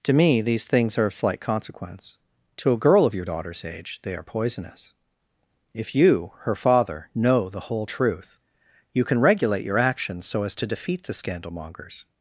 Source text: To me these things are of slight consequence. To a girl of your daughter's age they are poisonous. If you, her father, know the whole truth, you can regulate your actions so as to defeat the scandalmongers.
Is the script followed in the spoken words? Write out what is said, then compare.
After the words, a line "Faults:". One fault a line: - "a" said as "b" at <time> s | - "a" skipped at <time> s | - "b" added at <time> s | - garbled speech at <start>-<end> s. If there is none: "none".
To me these things are of slight consequence. To a girl of your daughter's age they are poisonous. If you, her father, know the whole truth, you can regulate your actions so as to defeat the scandalmongers.
Faults:
none